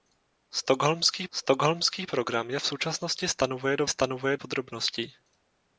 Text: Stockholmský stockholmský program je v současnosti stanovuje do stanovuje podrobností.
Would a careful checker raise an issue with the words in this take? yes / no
no